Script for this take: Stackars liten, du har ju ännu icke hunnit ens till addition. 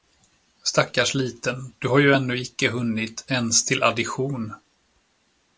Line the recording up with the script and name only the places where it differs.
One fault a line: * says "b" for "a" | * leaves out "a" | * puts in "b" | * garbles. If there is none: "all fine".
all fine